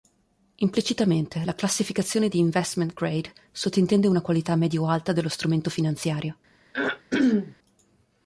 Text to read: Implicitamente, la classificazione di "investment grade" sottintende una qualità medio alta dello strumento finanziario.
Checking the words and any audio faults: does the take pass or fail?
fail